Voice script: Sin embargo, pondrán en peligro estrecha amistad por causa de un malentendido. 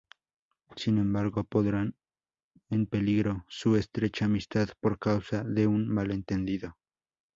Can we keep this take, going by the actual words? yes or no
no